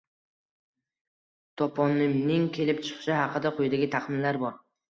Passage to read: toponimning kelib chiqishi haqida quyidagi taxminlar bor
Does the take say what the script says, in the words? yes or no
yes